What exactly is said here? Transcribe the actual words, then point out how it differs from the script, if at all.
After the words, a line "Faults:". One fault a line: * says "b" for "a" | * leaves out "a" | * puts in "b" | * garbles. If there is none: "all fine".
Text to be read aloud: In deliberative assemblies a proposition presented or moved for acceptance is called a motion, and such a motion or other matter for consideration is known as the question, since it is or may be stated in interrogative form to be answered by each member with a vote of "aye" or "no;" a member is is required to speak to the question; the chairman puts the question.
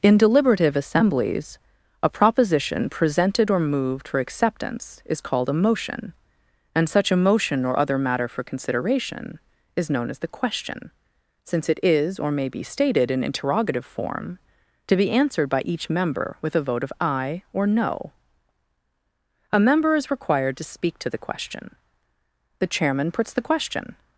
In deliberative assemblies a proposition presented or moved for acceptance is called a motion, and such a motion or other matter for consideration is known as the question, since it is or may be stated in interrogative form to be answered by each member with a vote of "aye" or "no;" a member is required to speak to the question; the chairman puts the question.
Faults:
* leaves out "is"